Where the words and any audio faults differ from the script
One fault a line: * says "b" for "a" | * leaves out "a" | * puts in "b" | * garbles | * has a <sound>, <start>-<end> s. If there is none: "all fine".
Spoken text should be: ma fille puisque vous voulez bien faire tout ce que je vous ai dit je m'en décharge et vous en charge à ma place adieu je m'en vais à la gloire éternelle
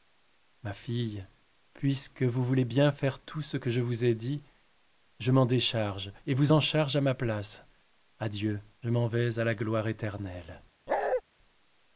* has a bark, 10.9-11.2 s